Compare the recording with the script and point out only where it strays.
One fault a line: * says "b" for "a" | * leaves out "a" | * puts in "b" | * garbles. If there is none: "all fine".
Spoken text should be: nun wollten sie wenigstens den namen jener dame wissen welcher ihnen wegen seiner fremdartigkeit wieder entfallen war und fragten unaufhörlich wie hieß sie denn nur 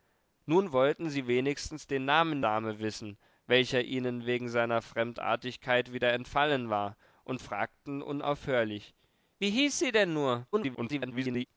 * leaves out "jener"
* garbles